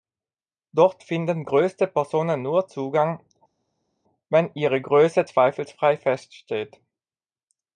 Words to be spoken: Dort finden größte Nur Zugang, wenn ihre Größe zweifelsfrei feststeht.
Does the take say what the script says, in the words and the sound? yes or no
no